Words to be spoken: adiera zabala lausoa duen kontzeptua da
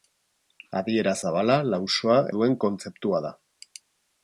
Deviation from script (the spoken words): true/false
false